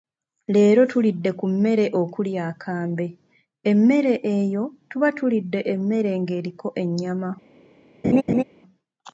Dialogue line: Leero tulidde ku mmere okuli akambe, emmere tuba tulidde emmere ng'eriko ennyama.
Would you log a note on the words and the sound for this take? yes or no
yes